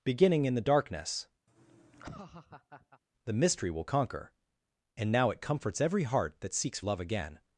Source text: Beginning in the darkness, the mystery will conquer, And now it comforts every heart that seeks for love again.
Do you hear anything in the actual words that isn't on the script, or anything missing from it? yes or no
yes